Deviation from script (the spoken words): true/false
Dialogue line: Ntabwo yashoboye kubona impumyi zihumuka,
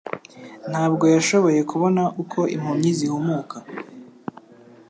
true